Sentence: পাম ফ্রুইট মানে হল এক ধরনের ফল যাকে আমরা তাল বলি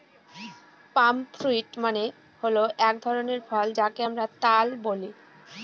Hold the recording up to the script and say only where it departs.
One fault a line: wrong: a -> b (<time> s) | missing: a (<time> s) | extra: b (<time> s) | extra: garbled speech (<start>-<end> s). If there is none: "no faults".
no faults